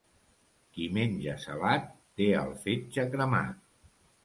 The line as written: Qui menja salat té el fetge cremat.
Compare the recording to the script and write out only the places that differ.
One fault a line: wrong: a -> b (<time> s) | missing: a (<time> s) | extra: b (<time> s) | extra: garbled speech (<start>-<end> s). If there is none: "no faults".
no faults